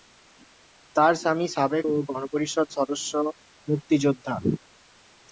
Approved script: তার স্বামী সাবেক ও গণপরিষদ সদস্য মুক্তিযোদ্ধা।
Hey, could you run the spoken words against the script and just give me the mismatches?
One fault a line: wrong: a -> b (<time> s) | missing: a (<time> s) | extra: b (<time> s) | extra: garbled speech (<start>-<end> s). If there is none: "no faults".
no faults